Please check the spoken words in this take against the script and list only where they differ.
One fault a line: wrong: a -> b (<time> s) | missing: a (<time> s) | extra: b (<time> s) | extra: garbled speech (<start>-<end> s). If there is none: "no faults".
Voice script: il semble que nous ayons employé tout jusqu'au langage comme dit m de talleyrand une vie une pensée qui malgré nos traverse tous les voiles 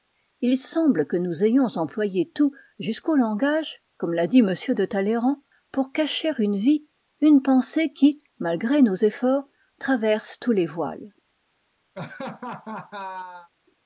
extra: l'a (4.1 s)
extra: pour cacher (5.7 s)
extra: efforts (8.9 s)